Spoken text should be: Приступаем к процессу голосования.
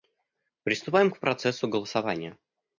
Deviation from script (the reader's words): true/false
false